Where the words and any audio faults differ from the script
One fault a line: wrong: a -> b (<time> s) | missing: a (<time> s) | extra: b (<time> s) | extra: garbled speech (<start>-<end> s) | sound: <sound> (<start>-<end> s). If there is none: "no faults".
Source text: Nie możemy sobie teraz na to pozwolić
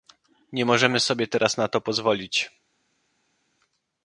no faults